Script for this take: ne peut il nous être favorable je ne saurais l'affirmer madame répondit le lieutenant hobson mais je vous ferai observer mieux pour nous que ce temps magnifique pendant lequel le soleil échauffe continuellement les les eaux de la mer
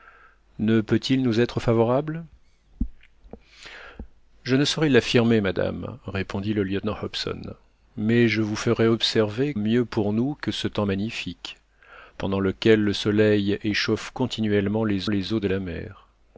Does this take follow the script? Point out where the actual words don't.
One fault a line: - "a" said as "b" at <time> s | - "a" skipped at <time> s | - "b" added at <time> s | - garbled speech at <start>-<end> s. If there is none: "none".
none